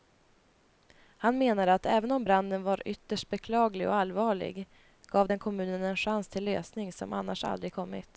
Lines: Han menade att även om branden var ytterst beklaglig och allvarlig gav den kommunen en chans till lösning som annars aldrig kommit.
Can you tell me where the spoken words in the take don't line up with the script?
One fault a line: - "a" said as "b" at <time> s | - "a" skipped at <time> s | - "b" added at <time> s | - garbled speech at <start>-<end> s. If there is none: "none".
none